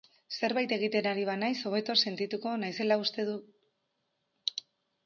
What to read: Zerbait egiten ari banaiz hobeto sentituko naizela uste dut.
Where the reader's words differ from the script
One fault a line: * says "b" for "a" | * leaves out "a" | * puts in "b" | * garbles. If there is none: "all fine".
all fine